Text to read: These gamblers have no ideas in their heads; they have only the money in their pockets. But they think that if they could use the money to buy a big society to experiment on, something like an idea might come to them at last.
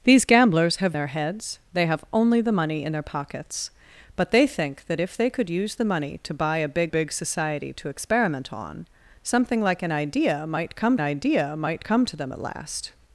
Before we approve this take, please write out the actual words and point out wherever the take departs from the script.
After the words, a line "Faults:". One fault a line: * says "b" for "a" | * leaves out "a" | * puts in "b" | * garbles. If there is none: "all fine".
These gamblers have their heads; they have only the money in their pockets. But they think that if they could use the money to buy a big big society to experiment on, something like an idea might come idea might come to them at last.
Faults:
* leaves out "no ideas in"
* puts in "big"
* puts in "idea might come"